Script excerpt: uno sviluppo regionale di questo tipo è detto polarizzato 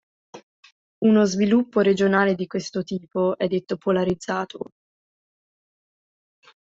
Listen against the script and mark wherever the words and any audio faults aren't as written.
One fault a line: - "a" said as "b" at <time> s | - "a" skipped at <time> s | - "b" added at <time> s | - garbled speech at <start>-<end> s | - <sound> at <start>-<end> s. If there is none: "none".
none